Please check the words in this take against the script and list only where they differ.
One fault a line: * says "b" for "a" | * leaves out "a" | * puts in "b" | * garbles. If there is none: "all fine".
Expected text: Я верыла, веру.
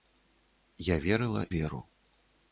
all fine